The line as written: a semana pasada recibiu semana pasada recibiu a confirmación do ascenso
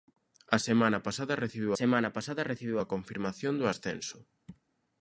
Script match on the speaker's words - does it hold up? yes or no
yes